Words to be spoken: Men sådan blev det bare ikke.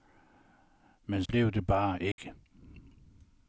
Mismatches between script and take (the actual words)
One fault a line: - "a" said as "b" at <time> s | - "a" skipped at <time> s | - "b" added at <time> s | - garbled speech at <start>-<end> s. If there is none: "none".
- "sådan" skipped at 1.2 s